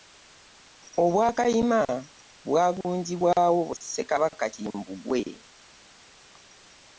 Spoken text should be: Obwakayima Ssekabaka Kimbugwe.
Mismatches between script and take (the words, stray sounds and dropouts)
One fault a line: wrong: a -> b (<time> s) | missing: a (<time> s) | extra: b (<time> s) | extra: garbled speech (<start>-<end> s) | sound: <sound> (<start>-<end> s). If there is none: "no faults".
extra: bwagunjibwawo (2.5 s)